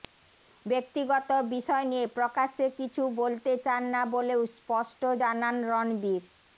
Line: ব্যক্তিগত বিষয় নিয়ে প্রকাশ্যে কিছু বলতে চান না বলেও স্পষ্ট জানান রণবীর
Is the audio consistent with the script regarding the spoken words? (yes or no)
yes